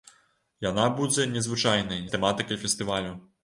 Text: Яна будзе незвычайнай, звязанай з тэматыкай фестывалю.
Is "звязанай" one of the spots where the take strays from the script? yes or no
yes